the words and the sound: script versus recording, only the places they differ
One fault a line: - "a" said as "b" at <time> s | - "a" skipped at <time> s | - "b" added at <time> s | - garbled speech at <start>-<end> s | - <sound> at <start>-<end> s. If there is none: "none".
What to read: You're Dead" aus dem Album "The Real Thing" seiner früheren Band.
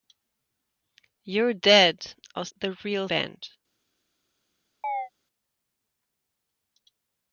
- "dem Album" skipped at 2.5 s
- "Thing seiner früheren" skipped at 3.1 s
- chirp at 4.8-5.1 s